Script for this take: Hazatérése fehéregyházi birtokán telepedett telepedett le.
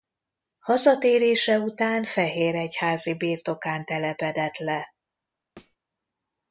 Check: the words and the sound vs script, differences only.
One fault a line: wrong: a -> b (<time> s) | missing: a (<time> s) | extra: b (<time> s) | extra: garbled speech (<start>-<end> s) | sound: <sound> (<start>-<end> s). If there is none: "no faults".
extra: után (1.6 s)
missing: telepedett (4.6 s)
sound: thud (5.6-5.8 s)